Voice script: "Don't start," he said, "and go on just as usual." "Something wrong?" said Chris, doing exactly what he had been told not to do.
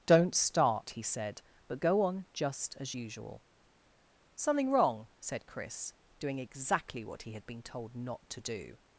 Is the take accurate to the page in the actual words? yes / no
no